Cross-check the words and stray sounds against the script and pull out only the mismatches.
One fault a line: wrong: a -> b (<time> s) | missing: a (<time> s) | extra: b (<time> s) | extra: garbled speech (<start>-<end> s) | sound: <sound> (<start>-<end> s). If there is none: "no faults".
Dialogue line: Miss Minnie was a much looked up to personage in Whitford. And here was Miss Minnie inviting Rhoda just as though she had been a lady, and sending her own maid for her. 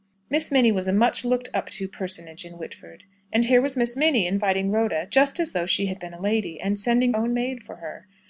missing: her (7.1 s)